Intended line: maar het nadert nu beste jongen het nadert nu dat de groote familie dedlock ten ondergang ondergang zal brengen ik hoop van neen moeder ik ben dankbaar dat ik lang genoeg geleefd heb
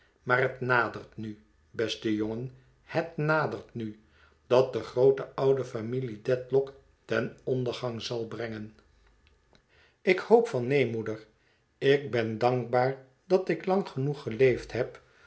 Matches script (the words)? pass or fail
fail